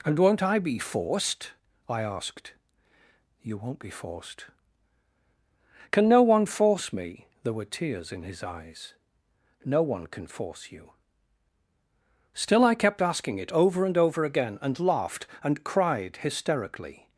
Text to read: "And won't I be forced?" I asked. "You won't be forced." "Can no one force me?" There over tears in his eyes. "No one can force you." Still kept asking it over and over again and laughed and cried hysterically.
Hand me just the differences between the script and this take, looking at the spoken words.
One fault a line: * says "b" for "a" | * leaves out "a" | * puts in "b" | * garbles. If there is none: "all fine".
* says "were" for "over"
* puts in "I"